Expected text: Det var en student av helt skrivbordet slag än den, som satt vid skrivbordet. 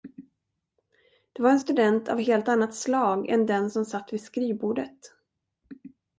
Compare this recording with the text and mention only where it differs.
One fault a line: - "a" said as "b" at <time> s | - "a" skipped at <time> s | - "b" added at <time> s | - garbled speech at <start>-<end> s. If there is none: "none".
- "skrivbordet" said as "annat" at 2.5 s